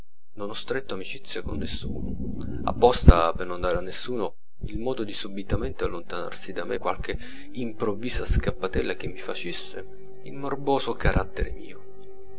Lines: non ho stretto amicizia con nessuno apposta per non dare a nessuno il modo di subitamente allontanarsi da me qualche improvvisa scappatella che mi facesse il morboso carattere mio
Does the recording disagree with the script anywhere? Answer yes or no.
no